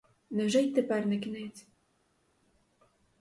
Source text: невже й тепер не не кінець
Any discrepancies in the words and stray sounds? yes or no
yes